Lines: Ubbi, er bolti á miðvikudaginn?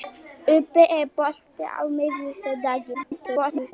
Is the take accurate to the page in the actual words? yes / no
no